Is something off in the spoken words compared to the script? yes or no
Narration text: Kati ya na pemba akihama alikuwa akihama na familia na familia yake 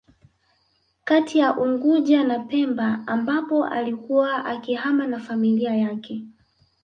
yes